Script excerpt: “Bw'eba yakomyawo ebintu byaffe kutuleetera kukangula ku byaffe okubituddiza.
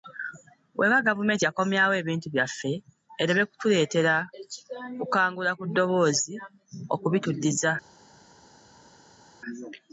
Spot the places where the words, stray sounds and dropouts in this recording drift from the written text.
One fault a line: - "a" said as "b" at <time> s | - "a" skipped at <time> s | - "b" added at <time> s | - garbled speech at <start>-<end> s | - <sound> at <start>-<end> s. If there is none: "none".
- "gavumenti" added at 1.1 s
- "ereme" added at 3.2 s
- "byaffe" said as "ddoboozi" at 5.7 s